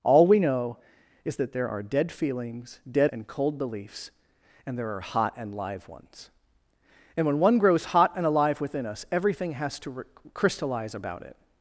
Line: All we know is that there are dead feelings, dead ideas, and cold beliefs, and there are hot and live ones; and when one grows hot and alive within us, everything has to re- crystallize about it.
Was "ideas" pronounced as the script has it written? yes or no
no